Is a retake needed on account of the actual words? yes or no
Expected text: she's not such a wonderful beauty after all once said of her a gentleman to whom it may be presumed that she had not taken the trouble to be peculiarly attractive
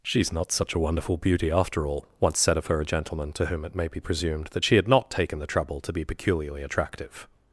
no